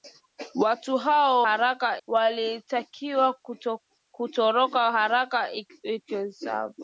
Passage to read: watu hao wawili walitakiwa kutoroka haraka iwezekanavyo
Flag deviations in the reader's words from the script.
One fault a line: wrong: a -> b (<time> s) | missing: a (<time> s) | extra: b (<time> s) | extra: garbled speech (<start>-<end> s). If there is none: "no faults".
wrong: wawili -> haraka (1.4 s)